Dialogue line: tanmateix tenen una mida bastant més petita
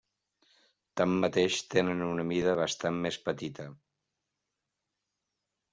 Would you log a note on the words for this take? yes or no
no